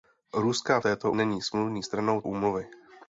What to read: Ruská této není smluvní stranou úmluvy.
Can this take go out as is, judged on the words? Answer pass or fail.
pass